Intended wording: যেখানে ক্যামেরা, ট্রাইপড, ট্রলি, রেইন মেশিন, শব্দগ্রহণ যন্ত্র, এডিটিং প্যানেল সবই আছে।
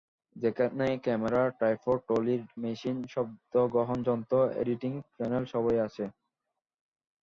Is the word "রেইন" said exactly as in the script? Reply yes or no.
no